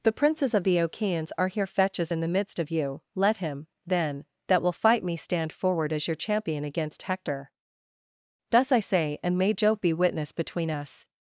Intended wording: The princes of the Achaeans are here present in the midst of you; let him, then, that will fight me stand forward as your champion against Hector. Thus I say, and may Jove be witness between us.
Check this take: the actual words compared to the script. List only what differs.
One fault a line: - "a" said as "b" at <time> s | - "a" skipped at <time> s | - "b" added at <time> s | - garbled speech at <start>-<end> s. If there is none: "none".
- "present" said as "fetches" at 1.7 s